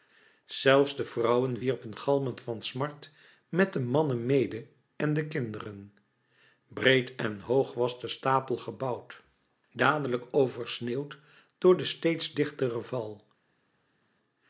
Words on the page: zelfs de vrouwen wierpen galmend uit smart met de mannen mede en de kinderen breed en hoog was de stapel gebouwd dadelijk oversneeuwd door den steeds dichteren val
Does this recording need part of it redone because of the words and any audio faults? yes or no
yes